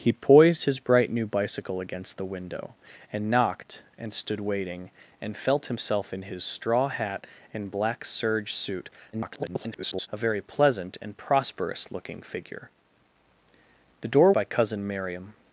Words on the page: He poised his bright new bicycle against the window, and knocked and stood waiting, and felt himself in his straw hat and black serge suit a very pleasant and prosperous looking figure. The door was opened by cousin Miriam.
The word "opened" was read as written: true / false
false